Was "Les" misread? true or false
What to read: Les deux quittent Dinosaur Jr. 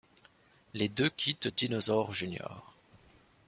false